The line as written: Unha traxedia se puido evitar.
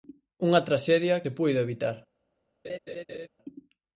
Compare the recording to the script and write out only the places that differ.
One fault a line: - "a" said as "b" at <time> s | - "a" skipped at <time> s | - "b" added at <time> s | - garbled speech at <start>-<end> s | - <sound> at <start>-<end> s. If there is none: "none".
- laugh at 2.6-3.3 s